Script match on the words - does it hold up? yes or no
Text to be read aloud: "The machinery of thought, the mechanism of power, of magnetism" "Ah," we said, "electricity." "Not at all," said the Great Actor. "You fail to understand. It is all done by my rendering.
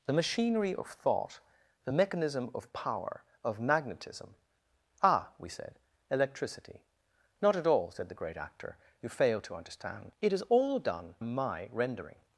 no